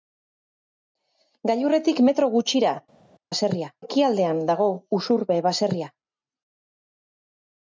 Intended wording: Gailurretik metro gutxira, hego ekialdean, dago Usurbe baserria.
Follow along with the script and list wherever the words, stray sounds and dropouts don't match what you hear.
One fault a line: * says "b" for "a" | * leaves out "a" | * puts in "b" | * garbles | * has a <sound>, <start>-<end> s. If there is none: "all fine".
* says "baserria" for "hego"